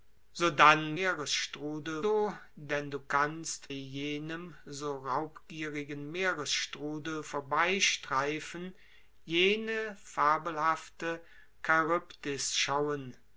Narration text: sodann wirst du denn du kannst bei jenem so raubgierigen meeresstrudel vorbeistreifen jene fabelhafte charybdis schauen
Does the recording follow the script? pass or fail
fail